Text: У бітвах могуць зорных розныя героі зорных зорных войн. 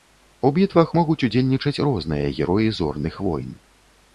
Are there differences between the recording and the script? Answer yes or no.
yes